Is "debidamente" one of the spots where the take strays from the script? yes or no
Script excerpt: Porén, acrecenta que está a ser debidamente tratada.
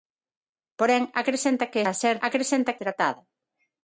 yes